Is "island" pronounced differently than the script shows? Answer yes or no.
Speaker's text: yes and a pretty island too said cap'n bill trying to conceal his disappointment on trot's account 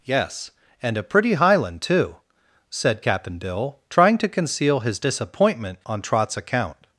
yes